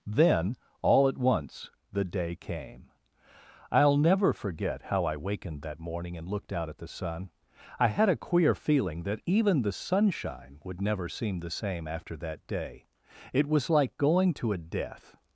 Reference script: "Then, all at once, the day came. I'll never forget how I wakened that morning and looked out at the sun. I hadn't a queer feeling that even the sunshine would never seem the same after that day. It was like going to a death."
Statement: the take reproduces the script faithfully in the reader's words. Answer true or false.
false